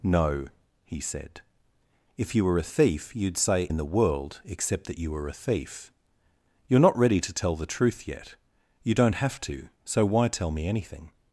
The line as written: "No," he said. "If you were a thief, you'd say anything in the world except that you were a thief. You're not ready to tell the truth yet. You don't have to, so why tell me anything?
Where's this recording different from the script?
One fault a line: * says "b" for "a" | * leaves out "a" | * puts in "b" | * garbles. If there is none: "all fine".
* leaves out "anything"